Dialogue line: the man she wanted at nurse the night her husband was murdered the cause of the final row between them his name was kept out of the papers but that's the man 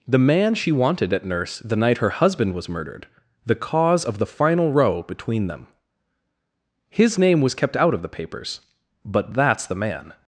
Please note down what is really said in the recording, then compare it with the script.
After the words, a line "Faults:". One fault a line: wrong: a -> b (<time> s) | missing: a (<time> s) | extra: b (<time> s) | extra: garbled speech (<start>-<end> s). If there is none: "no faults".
the man she wanted at nurse the night her husband was murdered the cause of the final row between them his name was kept out of the papers but that's the man
Faults:
no faults